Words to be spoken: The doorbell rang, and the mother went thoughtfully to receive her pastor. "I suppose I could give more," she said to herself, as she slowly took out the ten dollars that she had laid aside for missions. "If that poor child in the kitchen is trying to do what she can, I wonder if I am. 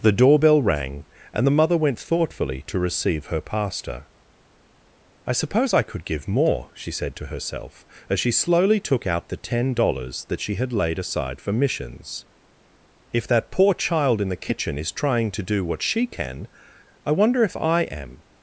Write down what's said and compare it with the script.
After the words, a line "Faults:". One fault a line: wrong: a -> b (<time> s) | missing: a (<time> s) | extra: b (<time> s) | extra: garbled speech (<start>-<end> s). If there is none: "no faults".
The doorbell rang, and the mother went thoughtfully to receive her pastor. "I suppose I could give more," she said to herself, as she slowly took out the ten dollars that she had laid aside for missions. "If that poor child in the kitchen is trying to do what she can, I wonder if I am.
Faults:
no faults